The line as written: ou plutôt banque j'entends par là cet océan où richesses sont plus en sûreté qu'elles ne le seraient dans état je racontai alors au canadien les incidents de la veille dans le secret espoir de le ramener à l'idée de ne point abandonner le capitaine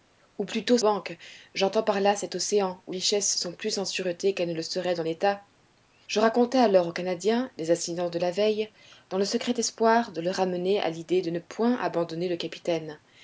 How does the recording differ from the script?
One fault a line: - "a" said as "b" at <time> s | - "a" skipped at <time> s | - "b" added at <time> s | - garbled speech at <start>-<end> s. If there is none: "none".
none